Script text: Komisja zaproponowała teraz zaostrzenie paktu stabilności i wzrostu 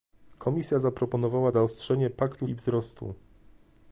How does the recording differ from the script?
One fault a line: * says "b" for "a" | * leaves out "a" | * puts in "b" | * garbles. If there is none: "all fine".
* leaves out "teraz"
* leaves out "stabilności"